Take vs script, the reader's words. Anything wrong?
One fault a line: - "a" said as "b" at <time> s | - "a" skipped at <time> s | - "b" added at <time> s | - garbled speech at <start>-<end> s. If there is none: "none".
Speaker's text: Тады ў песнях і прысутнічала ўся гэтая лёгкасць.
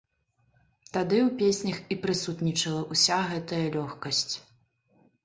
none